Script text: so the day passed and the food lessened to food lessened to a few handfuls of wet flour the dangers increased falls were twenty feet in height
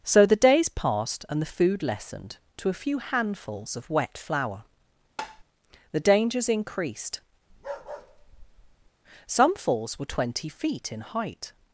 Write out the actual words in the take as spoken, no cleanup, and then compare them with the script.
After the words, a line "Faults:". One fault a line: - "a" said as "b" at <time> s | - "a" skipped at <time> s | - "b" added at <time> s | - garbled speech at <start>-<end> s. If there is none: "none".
so the days passed and the food lessened to a few handfuls of wet flour the dangers increased some falls were twenty feet in height
Faults:
- "day" said as "days" at 0.3 s
- "food lessened to" skipped at 2.7 s
- "some" added at 9.3 s